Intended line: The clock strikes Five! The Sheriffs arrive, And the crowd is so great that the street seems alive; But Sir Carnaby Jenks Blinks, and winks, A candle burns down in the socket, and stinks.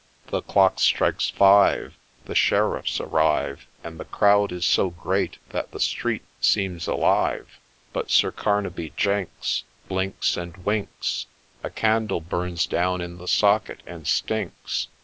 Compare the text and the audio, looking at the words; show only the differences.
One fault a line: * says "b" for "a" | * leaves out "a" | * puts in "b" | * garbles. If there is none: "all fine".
all fine